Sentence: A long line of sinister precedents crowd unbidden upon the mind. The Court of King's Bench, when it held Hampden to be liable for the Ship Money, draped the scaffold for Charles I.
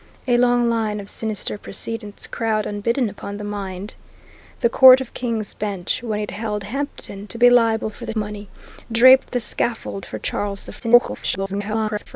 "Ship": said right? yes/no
no